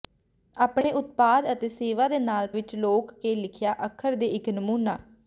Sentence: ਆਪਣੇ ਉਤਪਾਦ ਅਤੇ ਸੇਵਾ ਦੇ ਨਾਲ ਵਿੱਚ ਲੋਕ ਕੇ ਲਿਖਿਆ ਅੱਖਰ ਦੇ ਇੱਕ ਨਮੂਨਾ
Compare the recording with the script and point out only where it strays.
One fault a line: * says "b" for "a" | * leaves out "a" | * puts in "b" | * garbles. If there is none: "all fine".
all fine